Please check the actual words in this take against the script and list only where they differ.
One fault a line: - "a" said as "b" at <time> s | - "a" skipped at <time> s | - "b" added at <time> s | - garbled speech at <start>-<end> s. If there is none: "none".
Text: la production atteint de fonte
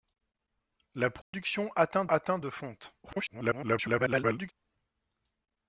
- "atteint" added at 2.1 s
- garbled speech at 3.0-4.5 s